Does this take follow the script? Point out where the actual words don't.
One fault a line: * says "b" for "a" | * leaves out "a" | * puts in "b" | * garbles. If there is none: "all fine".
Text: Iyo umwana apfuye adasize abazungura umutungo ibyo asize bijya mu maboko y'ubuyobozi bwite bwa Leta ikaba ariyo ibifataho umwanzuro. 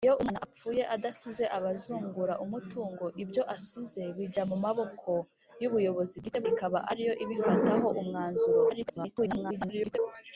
* leaves out "bwa Leta"
* garbles